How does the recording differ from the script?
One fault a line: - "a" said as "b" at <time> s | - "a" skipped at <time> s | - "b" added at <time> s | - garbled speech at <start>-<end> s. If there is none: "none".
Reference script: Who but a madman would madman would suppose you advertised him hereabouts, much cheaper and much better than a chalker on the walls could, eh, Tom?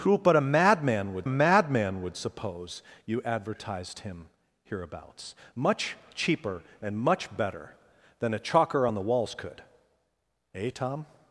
none